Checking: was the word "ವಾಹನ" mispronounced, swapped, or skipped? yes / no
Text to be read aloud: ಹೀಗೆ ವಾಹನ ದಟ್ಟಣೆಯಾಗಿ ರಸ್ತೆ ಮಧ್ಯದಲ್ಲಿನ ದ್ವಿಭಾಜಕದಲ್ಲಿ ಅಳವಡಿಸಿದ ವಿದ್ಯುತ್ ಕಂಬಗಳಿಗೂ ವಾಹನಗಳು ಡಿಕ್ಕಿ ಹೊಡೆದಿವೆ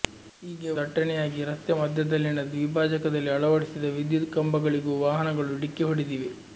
yes